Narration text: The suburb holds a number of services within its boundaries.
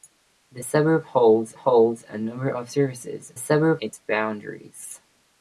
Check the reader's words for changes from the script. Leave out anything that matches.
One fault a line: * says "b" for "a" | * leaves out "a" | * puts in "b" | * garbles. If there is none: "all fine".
* puts in "holds"
* says "suburb" for "within"